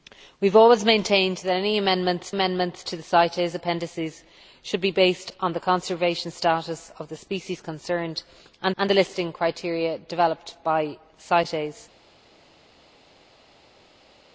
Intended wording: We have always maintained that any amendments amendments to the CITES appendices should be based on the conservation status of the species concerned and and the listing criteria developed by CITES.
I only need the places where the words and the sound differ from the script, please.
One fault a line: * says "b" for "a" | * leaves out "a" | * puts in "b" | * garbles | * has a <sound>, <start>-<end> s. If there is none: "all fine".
all fine